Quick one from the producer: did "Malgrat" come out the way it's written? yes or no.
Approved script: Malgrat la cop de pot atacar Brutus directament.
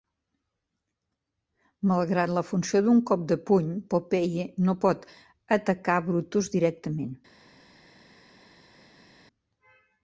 yes